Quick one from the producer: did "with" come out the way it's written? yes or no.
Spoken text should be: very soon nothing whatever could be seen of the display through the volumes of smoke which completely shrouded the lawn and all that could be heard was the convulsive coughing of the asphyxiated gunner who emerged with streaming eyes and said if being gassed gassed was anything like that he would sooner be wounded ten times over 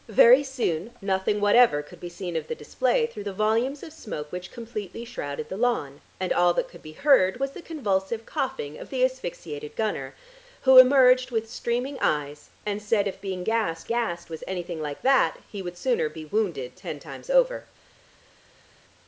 yes